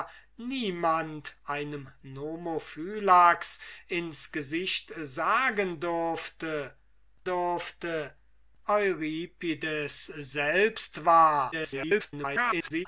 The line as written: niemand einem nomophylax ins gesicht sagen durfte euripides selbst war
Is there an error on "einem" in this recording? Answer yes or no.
no